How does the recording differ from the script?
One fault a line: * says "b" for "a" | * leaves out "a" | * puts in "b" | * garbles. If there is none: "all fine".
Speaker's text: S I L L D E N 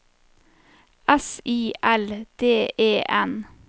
* leaves out "L"